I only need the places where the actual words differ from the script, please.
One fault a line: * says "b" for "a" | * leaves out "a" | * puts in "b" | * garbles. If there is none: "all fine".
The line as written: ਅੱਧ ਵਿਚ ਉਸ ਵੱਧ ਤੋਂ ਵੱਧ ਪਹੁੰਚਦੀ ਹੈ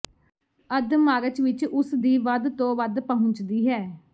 * puts in "ਮਾਰਚ"
* puts in "ਦੀ"